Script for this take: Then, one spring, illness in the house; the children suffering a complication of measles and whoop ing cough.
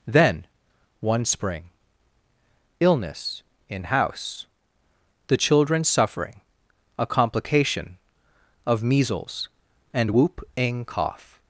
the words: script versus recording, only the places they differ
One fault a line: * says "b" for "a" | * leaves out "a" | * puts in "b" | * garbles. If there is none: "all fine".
* leaves out "the"